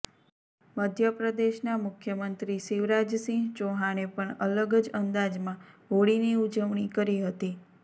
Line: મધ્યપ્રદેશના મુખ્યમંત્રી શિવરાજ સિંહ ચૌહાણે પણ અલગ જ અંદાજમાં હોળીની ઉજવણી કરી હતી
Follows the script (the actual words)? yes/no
yes